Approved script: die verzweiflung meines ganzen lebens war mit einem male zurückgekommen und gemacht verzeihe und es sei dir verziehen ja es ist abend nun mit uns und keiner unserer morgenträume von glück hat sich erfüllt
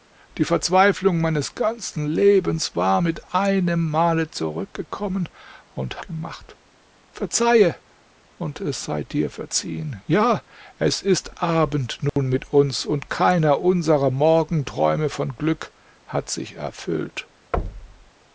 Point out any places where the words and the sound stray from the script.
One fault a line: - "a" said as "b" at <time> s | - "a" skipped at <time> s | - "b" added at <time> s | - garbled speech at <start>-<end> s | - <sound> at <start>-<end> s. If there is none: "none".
- dropout at 12.1-12.2 s
- thud at 17.5-18.1 s